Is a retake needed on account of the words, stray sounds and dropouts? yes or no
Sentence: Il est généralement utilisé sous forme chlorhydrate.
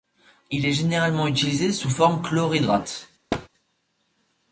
yes